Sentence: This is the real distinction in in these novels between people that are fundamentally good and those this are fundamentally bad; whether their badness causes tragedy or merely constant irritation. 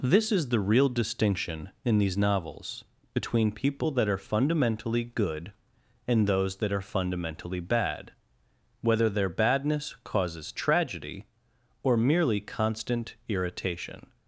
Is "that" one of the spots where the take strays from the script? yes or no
no